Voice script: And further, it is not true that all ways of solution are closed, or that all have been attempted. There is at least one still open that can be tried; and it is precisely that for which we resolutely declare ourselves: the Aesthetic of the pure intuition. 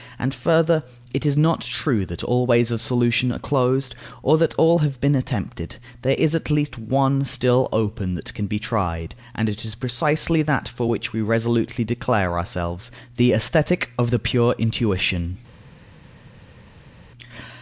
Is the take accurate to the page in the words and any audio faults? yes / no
yes